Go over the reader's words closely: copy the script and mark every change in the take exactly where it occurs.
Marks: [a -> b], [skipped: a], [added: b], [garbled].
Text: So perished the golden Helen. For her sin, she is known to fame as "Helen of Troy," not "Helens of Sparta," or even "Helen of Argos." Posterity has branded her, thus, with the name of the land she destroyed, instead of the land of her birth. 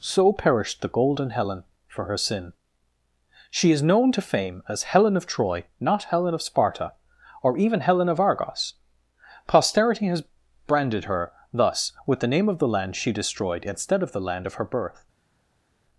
So perished the golden Helen. For her sin, she is known to fame as "Helen of Troy," not ["Helens -> Helen] of Sparta," or even "Helen of Argos." Posterity has branded her, thus, with the name of the land she destroyed, instead of the land of her birth.